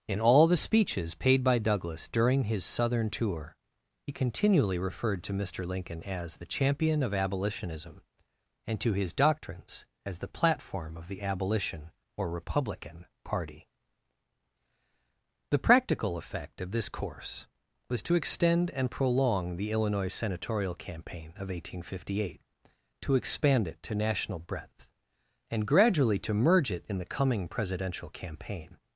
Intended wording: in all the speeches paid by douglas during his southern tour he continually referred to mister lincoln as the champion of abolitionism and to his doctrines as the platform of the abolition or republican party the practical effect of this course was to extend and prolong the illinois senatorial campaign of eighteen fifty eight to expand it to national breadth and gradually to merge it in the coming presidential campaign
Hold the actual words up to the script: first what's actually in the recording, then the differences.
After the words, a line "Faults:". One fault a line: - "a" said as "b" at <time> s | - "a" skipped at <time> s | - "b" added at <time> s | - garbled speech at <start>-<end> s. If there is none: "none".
in all the speeches paid by douglas during his southern tour he continually referred to mister lincoln as the champion of abolitionism and to his doctrines as the platform of the abolition or republican party the practical effect of this course was to extend and prolong the illinois senatorial campaign of eighteen fifty eight to expand it to national breadth and gradually to merge it in the coming presidential campaign
Faults:
none